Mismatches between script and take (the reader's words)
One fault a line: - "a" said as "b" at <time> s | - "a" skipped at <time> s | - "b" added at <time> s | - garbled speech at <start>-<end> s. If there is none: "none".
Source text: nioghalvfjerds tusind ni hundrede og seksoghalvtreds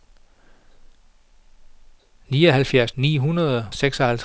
- "tusind" skipped at 2.9 s
- "og" skipped at 3.7 s